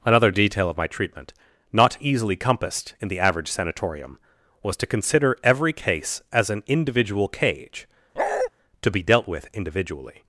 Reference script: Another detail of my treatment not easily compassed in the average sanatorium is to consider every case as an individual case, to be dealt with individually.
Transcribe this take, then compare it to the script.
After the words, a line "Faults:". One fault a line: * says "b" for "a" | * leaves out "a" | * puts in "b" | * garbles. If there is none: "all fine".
Another detail of my treatment not easily compassed in the average sanatorium was to consider every case as an individual cage, to be dealt with individually.
Faults:
* says "was" for "is"
* says "cage" for "case"